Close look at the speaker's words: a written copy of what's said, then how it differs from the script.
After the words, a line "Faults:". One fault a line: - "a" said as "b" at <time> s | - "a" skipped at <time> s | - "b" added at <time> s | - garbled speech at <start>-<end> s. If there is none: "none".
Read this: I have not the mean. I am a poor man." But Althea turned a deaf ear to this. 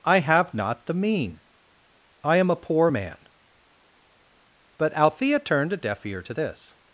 I have not the mean. I am a poor man." But Althea turned a deaf ear to this.
Faults:
none